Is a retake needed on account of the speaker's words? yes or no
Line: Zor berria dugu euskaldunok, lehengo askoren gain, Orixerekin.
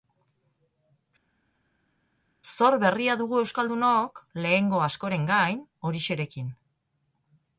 no